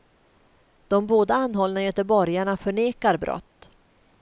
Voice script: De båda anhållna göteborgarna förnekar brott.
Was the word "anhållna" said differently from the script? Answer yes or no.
no